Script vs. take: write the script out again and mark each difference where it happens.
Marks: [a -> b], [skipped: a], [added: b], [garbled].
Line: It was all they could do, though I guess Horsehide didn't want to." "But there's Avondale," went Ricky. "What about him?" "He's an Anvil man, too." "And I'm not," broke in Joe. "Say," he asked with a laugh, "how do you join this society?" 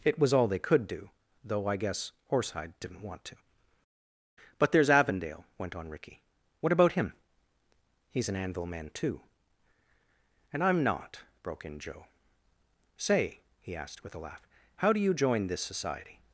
It was all they could do, though I guess Horsehide didn't want to." "But there's Avondale," went [added: on] Ricky. "What about him?" "He's an Anvil man, too." "And I'm not," broke in Joe. "Say," he asked with a laugh, "how do you join this society?"